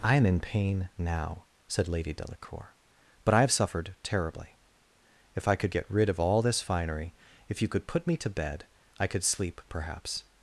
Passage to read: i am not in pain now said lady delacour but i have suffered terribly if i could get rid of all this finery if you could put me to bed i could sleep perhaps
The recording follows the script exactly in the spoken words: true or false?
false